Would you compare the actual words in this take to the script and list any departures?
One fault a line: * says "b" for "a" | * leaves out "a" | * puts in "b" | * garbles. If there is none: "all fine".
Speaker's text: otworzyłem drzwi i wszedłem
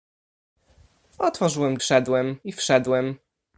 * says "wszedłem" for "drzwi"